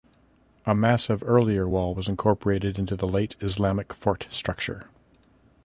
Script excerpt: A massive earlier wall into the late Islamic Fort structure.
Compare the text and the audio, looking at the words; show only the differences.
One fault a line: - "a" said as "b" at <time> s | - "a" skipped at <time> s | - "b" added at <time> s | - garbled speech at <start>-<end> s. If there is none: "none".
- "was incorporated" added at 1.9 s